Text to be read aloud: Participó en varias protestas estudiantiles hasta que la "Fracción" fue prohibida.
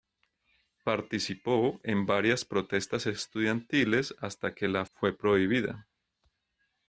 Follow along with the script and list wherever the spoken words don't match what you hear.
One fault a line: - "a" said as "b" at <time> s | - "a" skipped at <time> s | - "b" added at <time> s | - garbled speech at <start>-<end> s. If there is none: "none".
- "Fracción" skipped at 4.8 s